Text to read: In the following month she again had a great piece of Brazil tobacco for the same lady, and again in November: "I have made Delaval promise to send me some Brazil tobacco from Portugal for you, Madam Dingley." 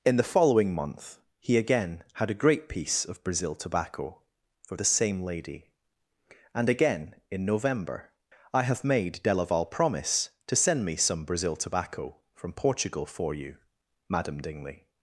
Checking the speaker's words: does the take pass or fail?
fail